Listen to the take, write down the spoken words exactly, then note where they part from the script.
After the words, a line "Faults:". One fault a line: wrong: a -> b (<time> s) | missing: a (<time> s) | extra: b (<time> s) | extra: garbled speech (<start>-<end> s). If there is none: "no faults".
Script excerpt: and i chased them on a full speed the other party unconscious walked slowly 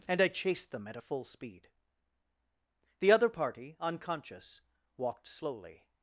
and i chased them at a full speed the other party unconscious walked slowly
Faults:
wrong: on -> at (0.9 s)